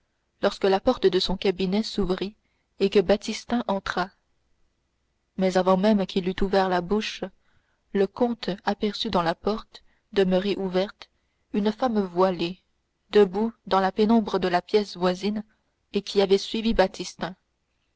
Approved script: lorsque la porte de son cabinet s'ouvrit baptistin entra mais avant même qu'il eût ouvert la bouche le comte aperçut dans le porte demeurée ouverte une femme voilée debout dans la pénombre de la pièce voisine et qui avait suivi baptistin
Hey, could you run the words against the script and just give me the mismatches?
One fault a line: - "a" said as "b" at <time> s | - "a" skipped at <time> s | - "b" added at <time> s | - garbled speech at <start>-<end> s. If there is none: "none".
- "et que" added at 2.8 s
- "le" said as "la" at 9.2 s